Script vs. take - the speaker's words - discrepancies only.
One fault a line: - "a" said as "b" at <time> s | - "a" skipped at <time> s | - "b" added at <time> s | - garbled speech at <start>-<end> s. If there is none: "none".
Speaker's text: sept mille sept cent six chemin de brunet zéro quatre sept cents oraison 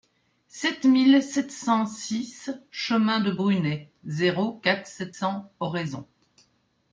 none